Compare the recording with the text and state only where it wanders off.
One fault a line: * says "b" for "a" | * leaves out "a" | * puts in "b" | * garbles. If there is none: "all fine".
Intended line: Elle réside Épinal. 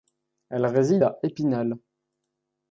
* puts in "à"